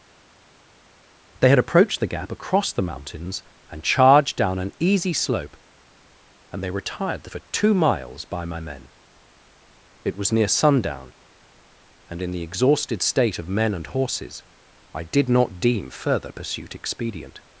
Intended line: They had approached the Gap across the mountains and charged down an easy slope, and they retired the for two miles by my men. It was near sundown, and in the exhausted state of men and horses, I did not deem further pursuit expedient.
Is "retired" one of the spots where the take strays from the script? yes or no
no